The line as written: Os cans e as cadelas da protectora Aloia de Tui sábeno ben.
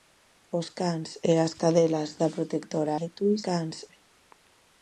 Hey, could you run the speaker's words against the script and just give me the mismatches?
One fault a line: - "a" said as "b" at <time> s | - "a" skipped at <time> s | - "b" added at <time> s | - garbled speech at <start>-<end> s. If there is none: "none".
- "Aloia" skipped at 2.9 s
- "sábeno" said as "cans" at 3.5 s